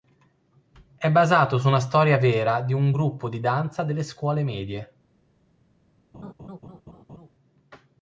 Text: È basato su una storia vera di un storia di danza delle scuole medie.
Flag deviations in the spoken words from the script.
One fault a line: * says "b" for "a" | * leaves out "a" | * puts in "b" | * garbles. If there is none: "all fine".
* says "gruppo" for "storia"